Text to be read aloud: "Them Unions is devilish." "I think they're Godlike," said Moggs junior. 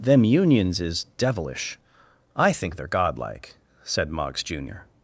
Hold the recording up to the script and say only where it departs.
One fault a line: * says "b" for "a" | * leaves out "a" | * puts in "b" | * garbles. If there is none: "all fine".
all fine